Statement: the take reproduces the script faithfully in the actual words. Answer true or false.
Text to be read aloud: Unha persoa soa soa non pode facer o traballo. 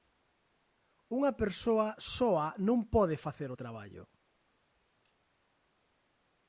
false